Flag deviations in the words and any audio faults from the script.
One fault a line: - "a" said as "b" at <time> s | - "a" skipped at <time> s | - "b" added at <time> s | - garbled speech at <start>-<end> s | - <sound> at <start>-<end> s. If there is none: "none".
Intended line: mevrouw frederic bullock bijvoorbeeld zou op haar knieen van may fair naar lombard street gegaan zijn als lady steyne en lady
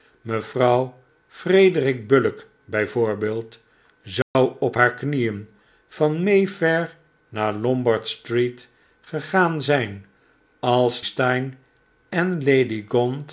- dropout at 4.2-4.4 s
- "lady" skipped at 11.0 s